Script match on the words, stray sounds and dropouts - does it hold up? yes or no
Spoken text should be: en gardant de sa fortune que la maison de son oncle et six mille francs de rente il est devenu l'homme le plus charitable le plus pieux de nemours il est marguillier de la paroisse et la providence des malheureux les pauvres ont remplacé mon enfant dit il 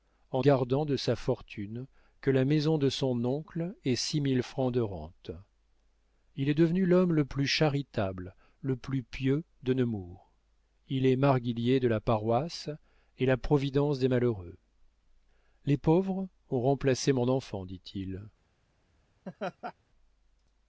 no